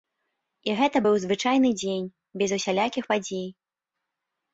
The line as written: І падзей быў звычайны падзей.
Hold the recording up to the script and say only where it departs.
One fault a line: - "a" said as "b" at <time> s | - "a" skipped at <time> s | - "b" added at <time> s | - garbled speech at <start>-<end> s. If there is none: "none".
- "падзей" said as "гэта" at 0.8 s
- "дзень без усялякіх" added at 1.8 s